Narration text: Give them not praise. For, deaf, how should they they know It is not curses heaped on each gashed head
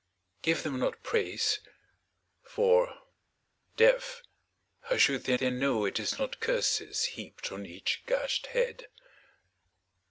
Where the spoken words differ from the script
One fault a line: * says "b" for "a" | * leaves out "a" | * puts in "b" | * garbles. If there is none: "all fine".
all fine